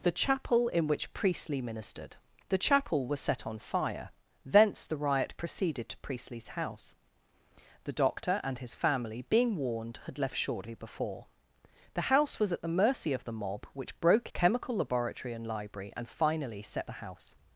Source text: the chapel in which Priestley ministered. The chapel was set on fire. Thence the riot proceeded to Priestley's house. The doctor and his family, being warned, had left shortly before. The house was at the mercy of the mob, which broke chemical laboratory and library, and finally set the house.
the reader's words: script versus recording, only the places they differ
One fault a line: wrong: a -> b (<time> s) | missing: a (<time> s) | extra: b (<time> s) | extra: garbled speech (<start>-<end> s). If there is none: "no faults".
no faults